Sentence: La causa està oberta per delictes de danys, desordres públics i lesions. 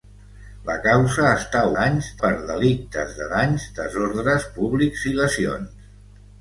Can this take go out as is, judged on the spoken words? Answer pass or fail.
fail